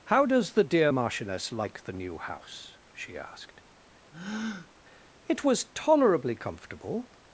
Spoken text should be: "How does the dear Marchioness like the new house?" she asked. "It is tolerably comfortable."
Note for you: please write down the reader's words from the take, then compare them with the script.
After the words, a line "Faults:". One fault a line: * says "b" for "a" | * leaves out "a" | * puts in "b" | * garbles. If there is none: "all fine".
"How does the dear Marchioness like the new house?" she asked. "It was tolerably comfortable."
Faults:
* says "was" for "is"